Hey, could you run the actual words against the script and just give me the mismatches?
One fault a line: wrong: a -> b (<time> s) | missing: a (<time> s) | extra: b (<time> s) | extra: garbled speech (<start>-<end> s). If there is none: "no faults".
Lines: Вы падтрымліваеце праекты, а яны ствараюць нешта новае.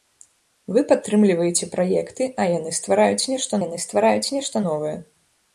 extra: яны ствараюць нешта (3.6 s)